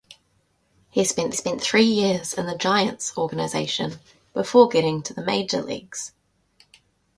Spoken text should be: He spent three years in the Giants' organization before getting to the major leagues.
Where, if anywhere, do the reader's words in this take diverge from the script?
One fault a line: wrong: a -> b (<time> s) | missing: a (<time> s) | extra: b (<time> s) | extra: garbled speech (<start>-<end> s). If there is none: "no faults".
extra: spent (1.3 s)